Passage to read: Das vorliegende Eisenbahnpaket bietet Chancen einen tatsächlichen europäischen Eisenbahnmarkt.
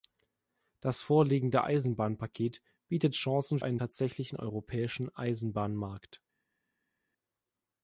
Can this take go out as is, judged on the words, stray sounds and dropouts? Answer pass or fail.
pass